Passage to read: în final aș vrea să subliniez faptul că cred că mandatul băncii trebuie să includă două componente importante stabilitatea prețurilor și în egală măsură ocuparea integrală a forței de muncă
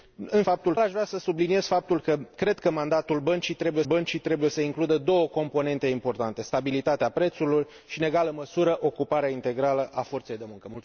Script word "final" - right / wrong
wrong